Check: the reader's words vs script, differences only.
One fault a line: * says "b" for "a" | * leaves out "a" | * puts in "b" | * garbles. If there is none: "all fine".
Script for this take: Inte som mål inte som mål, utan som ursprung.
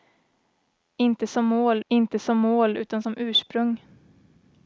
all fine